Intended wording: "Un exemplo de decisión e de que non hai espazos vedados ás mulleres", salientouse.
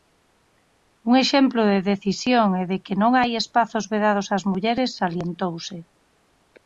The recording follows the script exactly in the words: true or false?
true